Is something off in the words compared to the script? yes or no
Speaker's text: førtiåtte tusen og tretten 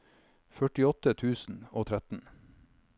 no